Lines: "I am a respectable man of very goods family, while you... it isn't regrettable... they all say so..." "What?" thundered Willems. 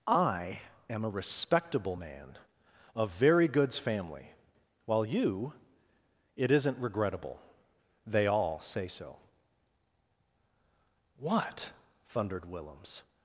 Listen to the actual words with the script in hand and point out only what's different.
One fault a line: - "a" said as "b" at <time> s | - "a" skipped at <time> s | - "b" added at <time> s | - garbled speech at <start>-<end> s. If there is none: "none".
none